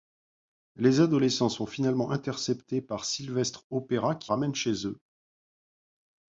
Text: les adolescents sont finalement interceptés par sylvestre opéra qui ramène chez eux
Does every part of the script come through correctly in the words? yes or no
yes